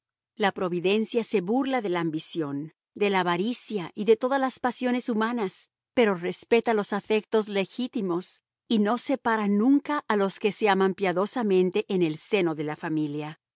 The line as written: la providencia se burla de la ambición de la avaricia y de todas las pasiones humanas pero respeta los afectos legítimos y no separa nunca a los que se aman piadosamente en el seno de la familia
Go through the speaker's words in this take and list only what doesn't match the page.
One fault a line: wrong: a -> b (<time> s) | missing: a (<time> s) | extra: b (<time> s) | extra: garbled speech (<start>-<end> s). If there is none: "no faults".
no faults